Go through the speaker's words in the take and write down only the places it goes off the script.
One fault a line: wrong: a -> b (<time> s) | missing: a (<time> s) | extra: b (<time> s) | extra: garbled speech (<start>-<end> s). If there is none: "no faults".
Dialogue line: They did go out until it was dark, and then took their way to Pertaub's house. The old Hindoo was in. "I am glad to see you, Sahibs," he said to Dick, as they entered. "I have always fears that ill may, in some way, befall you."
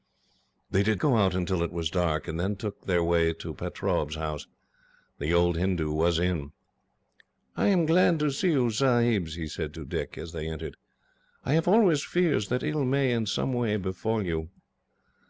no faults